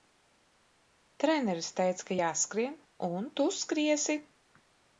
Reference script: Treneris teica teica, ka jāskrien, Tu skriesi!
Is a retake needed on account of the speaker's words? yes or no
yes